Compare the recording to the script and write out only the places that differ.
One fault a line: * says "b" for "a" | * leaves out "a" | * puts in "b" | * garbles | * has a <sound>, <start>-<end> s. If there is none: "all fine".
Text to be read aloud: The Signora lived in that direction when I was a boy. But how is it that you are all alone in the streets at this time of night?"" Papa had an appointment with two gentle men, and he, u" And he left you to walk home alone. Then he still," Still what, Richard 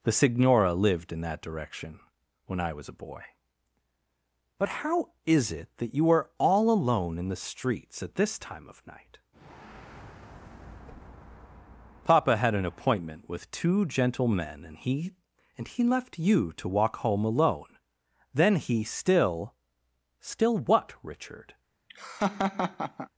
* leaves out "u"
* has a laugh, 21.9-23.1 s